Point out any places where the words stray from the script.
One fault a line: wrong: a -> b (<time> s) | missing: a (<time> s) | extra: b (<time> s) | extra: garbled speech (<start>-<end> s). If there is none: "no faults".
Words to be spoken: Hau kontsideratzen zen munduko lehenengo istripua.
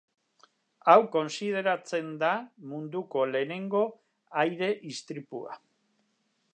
wrong: zen -> da (2.2 s)
extra: aire (4.5 s)